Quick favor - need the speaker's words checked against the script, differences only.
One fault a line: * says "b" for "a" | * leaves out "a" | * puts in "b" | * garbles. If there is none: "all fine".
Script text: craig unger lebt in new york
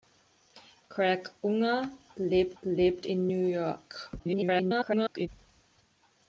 * puts in "lebt"
* garbles